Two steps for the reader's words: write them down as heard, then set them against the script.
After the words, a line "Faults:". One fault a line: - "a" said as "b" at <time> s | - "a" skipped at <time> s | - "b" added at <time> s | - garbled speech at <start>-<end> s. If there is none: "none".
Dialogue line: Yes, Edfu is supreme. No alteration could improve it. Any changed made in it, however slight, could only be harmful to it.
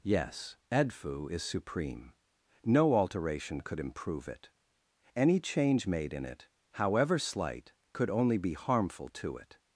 Yes, Edfu is supreme. No alteration could improve it. Any change made in it, however slight, could only be harmful to it.
Faults:
- "changed" said as "change" at 5.4 s